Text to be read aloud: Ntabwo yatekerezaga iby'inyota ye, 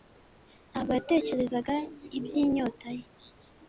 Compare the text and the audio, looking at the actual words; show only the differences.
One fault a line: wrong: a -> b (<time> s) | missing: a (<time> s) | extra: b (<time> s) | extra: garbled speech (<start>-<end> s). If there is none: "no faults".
no faults